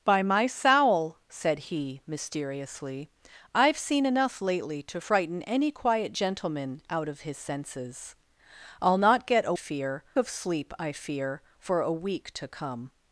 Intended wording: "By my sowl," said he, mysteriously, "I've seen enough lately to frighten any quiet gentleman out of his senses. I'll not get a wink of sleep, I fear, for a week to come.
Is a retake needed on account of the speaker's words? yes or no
yes